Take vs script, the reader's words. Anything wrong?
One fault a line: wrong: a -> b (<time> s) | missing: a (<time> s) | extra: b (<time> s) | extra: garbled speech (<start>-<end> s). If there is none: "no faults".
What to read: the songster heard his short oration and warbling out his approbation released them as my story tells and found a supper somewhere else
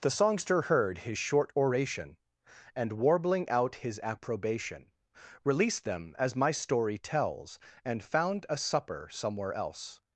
no faults